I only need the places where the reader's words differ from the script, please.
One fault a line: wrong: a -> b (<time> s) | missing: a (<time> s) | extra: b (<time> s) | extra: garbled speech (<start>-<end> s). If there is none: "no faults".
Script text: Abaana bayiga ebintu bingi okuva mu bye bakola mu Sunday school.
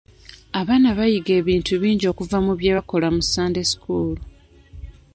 no faults